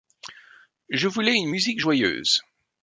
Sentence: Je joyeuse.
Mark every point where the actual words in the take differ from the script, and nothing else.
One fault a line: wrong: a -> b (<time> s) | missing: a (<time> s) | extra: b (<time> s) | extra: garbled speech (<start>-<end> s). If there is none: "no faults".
extra: voulais une musique (1.1 s)